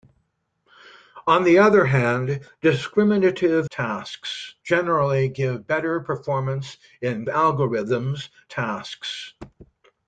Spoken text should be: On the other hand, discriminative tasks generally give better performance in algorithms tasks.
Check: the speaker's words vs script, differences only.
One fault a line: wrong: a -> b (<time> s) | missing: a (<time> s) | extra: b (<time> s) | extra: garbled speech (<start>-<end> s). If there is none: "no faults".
no faults